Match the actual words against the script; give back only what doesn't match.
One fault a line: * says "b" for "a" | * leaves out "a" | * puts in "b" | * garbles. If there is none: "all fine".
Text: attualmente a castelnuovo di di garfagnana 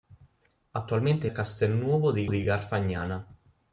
all fine